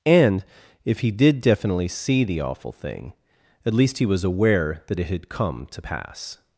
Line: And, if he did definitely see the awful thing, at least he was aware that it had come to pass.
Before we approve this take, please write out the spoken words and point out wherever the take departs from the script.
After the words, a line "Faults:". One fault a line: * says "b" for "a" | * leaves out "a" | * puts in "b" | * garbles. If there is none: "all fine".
And, if he did definitely see the awful thing, at least he was aware that it had come to pass.
Faults:
all fine